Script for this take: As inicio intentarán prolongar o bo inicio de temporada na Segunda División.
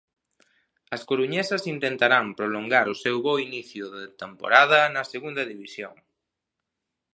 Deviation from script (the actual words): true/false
true